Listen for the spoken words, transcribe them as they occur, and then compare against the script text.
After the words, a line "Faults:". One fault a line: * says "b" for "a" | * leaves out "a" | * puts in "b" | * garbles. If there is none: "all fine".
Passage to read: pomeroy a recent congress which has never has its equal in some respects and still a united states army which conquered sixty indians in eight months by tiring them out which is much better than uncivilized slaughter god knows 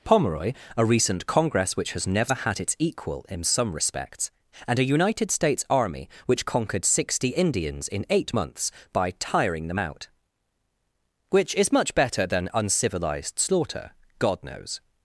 pomeroy a recent congress which has never had its equal in some respects and a united states army which conquered sixty indians in eight months by tiring them out which is much better than uncivilized slaughter god knows
Faults:
* says "had" for "has"
* leaves out "still"